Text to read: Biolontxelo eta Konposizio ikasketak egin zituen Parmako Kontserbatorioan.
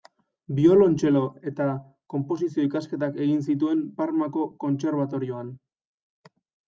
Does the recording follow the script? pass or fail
pass